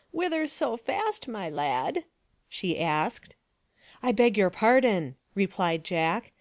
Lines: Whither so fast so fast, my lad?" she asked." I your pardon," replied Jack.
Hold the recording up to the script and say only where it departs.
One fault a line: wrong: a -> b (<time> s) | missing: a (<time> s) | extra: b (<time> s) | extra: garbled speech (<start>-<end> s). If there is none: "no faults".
missing: so fast (1.3 s)
extra: beg (4.1 s)